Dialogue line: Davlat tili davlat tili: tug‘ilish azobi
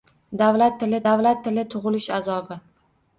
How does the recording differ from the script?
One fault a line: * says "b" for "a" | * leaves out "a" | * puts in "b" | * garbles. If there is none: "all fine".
all fine